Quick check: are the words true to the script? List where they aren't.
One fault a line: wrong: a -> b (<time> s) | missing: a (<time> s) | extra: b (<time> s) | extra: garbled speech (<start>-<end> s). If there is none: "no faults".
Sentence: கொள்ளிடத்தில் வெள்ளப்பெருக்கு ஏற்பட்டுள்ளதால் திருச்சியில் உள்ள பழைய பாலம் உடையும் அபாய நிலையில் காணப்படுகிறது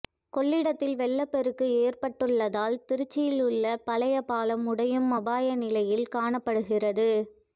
no faults